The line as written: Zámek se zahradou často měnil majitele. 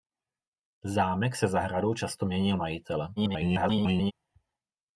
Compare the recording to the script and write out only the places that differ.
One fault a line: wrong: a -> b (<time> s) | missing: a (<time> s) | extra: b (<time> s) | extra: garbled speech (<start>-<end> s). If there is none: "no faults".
extra: garbled speech (3.2-4.1 s)